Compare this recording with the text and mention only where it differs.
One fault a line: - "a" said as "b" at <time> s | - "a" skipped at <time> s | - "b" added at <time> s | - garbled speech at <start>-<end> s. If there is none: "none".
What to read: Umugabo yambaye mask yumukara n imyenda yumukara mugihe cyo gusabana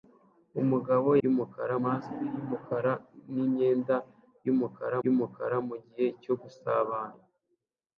- "yambaye" said as "yumukara" at 1.2 s
- "yumukara" added at 5.0 s